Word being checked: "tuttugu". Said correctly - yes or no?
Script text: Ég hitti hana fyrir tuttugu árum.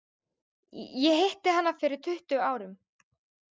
yes